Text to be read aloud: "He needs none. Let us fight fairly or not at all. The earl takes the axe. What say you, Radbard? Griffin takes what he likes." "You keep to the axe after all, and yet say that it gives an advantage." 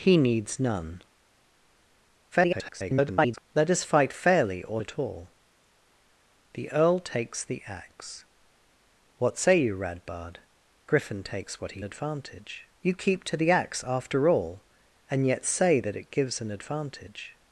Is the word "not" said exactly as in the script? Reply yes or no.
no